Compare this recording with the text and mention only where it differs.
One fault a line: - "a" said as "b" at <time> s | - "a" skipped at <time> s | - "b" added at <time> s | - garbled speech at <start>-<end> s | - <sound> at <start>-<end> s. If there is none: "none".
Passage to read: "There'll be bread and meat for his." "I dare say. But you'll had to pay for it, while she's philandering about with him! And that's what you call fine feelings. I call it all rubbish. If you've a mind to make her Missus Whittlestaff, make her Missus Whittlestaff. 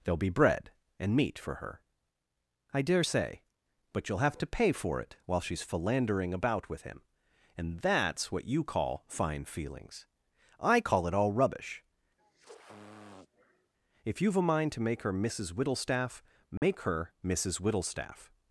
- "his" said as "her" at 1.6 s
- "had" said as "have" at 4.3 s
- sniff at 12.2-13.7 s
- dropout at 16.6-16.6 s